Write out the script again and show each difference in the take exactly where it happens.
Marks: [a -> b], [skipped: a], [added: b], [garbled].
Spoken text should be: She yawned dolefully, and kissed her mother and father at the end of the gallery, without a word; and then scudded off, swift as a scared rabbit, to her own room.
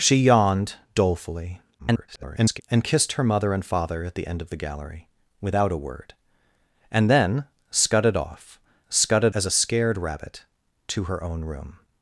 She yawned dolefully, [garbled] and kissed her mother and father at the end of the gallery, without a word; and then scudded off, [swift -> scudded] as a scared rabbit, to her own room.